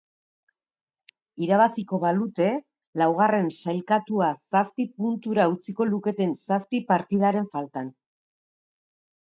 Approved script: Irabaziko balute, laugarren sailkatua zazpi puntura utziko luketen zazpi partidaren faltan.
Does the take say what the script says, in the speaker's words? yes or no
yes